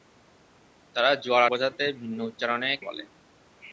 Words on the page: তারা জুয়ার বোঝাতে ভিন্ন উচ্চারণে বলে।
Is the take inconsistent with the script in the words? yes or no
no